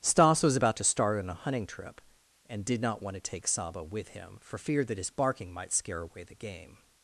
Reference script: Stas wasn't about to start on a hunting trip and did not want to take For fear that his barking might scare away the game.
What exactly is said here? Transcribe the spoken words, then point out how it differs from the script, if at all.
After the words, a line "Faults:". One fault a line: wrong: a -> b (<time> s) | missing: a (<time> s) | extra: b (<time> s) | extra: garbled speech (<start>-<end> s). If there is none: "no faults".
Stas was about to start on a hunting trip and did not want to take Saba with him, for fear that his barking might scare away the game.
Faults:
wrong: wasn't -> was (0.4 s)
extra: Saba with him (3.5 s)